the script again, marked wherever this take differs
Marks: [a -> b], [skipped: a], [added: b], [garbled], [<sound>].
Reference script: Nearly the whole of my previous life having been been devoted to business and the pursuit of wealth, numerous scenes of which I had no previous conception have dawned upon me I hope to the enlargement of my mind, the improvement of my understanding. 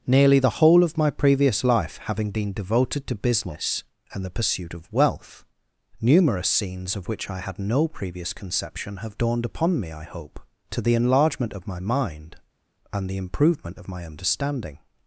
Nearly the whole of my previous life having been [skipped: been] devoted to business and the pursuit of wealth, numerous scenes of which I had no previous conception have dawned upon me I hope to the enlargement of my mind, [added: and] the improvement of my understanding.